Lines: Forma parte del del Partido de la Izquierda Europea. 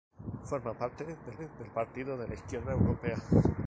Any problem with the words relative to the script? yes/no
no